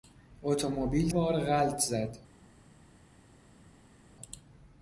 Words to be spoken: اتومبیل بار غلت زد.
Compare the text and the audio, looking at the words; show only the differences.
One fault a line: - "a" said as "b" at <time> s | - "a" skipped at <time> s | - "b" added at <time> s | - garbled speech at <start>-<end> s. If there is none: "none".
none